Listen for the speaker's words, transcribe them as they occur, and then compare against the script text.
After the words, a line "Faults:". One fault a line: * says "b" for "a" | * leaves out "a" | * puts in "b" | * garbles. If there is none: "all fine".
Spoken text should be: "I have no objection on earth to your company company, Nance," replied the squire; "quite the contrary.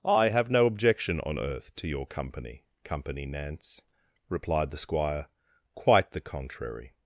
"I have no objection on earth to your company company, Nance," replied the squire; "quite the contrary.
Faults:
all fine